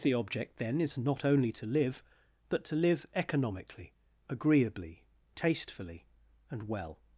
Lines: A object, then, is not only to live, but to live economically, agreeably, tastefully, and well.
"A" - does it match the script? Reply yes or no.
no